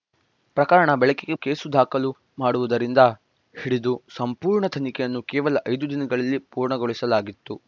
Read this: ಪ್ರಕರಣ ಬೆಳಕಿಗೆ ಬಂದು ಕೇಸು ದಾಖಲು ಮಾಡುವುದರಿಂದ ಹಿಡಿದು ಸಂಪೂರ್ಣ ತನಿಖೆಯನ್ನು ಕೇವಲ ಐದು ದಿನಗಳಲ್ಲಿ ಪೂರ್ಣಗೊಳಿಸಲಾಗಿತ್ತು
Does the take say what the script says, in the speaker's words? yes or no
no